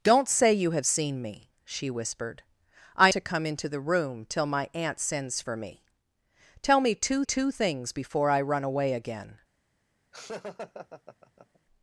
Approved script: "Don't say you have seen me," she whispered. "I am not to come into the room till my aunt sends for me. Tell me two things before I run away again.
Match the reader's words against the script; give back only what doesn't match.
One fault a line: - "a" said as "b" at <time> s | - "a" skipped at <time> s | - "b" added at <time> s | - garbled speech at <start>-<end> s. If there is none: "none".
- "am not" skipped at 3.1 s
- "two" added at 7.2 s